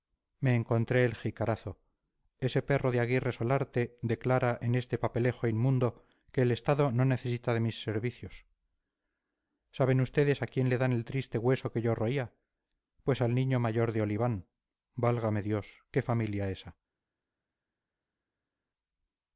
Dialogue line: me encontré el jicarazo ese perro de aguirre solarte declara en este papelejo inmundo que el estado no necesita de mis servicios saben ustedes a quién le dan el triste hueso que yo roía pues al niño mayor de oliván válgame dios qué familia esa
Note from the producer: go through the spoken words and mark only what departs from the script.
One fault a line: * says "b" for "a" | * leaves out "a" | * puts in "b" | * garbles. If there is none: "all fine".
all fine